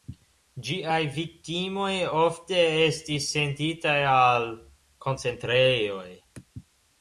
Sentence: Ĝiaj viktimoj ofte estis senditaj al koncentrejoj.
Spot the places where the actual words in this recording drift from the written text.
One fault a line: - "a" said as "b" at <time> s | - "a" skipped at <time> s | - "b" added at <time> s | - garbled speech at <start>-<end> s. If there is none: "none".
none